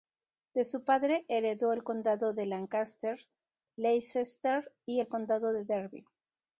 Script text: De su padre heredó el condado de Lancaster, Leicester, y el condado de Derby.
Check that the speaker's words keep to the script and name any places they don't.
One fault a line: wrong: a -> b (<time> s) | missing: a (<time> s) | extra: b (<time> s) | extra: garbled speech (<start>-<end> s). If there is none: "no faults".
no faults